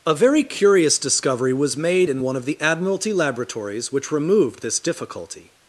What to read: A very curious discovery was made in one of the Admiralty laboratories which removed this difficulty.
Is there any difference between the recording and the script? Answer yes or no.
no